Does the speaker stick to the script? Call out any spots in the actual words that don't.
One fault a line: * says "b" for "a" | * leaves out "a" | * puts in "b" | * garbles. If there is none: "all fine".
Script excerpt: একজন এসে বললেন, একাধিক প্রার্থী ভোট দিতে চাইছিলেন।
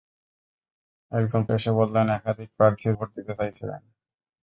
all fine